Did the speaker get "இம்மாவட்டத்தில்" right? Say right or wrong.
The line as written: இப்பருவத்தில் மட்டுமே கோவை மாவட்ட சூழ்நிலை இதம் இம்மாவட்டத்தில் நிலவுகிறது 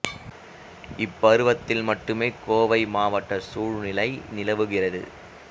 wrong